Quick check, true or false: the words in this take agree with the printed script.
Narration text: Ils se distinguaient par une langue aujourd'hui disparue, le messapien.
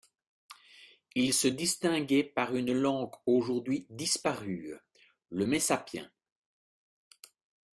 true